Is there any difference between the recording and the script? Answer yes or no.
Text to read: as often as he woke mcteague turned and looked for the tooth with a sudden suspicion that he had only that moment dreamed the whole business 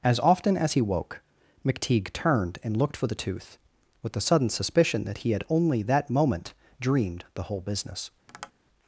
yes